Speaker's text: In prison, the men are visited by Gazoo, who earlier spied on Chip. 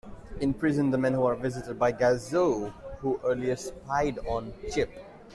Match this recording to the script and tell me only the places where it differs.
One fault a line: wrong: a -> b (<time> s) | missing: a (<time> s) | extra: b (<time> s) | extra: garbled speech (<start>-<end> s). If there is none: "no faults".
no faults